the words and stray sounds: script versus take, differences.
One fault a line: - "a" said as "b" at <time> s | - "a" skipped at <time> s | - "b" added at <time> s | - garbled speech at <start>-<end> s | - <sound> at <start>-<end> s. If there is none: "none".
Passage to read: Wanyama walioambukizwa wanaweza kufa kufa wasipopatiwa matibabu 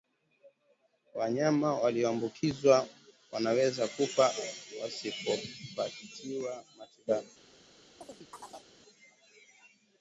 - "kufa" skipped at 4.3 s
- chirp at 8.0-8.7 s